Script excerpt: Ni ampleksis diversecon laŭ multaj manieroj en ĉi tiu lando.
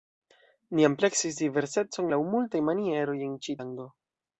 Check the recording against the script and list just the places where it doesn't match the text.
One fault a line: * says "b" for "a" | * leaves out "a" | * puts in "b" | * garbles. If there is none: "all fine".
* leaves out "tiu"